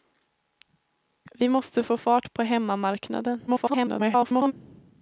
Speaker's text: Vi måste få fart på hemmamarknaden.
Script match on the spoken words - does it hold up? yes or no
no